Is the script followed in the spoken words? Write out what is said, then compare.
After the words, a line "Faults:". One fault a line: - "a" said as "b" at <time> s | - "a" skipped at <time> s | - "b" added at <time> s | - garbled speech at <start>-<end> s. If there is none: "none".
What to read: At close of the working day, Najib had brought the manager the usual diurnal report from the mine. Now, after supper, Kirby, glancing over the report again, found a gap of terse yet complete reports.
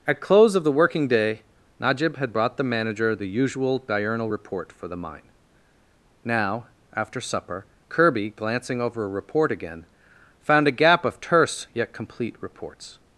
At close of the working day, Najib had brought the manager the usual diurnal report for the mine. Now, after supper, Kirby, glancing over a report again, found a gap of terse yet complete reports.
Faults:
- "from" said as "for" at 4.7 s
- "the" said as "a" at 9.0 s